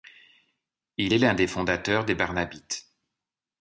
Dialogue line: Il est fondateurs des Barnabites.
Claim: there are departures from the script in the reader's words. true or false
true